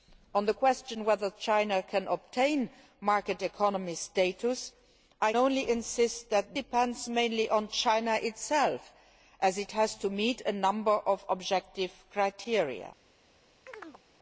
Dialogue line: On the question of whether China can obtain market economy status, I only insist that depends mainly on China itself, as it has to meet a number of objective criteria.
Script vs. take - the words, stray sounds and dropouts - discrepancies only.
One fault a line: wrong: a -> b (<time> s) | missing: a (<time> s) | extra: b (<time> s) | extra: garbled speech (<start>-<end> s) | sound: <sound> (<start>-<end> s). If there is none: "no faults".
sound: chirp (13.7-14.0 s)